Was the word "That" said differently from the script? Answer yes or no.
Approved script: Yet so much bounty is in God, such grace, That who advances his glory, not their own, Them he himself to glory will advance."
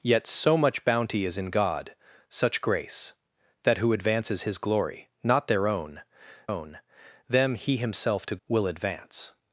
no